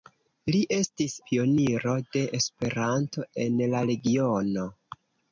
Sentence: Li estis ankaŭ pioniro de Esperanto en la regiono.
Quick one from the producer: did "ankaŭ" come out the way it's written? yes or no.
no